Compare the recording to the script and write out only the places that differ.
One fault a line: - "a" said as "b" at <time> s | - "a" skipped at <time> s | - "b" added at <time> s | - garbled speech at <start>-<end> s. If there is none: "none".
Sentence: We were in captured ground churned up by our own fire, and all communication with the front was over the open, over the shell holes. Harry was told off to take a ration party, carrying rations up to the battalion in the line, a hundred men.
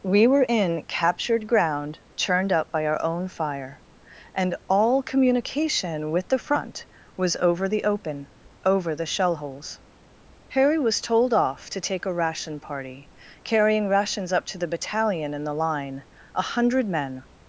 none